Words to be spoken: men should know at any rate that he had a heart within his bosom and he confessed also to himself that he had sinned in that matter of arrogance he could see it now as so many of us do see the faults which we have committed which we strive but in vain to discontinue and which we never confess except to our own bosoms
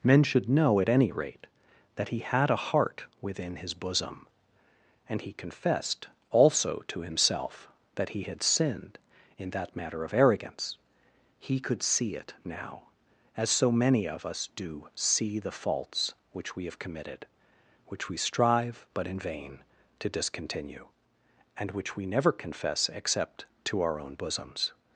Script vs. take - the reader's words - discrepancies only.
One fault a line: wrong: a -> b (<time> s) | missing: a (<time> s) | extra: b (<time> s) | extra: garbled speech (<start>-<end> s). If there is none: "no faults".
no faults